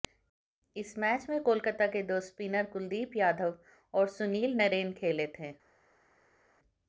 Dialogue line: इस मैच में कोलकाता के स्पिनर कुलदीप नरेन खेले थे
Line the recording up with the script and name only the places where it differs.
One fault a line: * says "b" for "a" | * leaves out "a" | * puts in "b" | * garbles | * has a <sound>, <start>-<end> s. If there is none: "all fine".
* puts in "दो"
* puts in "यादव और सुनील"